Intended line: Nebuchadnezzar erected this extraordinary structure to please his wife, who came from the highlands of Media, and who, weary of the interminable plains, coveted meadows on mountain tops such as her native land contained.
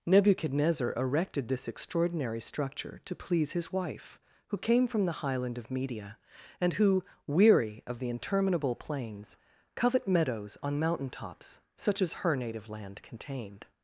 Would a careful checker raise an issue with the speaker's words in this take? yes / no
yes